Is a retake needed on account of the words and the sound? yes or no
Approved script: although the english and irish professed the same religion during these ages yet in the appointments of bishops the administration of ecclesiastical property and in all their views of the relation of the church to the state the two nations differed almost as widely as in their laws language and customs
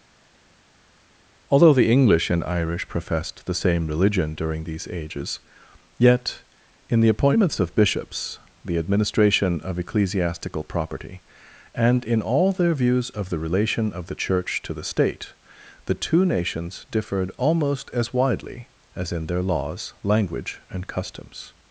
no